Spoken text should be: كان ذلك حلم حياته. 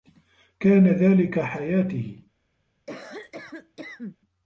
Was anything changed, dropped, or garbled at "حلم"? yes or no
yes